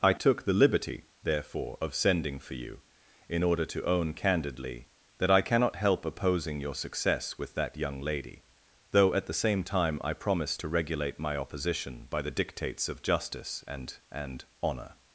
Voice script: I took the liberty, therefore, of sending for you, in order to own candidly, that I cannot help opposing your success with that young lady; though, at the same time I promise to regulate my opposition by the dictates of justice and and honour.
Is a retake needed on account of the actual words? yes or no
no